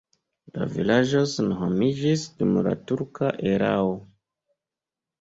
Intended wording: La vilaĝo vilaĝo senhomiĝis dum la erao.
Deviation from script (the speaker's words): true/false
true